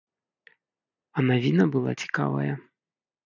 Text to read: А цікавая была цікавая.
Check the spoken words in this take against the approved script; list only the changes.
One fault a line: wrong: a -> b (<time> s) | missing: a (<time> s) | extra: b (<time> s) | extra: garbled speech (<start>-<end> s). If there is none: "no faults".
wrong: цікавая -> навіна (1.3 s)